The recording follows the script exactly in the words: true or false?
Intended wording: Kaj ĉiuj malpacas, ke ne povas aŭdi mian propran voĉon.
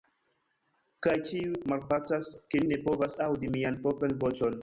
true